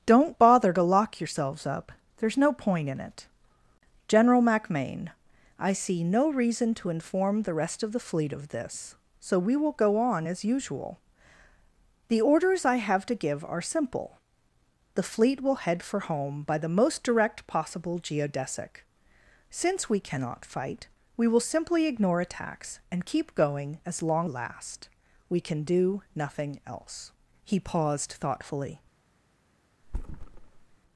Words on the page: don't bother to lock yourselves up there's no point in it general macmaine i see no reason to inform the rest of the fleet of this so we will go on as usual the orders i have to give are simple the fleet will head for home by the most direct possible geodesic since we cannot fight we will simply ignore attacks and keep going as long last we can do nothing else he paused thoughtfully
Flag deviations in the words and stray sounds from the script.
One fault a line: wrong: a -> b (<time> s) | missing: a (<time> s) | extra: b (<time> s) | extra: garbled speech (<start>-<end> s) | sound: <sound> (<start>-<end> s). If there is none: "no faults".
sound: thud (29.8-30.8 s)